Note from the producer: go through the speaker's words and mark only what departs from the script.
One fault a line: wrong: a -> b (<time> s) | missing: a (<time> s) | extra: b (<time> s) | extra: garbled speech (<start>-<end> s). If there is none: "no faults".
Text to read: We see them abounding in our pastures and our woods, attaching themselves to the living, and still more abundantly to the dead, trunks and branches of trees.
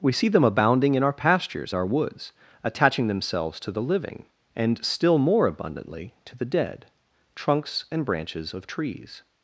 missing: and (1.7 s)